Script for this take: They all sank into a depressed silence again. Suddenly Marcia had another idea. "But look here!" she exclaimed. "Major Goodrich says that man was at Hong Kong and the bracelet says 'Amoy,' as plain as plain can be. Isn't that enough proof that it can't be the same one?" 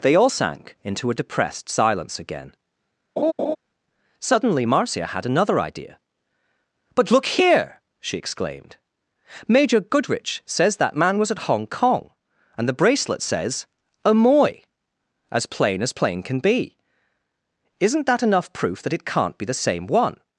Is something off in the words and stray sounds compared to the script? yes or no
yes